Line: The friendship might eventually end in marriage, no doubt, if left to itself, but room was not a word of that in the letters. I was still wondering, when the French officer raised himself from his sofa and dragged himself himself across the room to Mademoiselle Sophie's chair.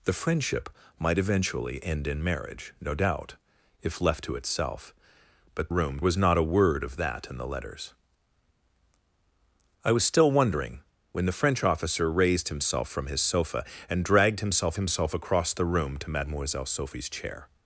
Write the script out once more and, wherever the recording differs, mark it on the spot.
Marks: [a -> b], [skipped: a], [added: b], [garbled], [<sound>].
The friendship might eventually end in marriage, no doubt, if left to itself, but room was not a word of that in the letters. I was still wondering, when the French officer raised himself from his sofa and dragged himself himself across the room to Mademoiselle Sophie's chair.